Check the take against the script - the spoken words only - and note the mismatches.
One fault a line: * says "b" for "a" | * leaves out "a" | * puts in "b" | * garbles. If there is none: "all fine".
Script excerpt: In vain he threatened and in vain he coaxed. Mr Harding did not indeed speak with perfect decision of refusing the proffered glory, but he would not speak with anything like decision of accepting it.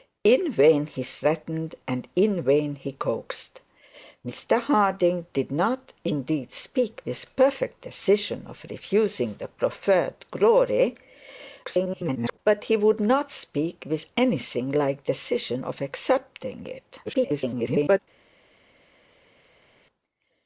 * garbles
* garbles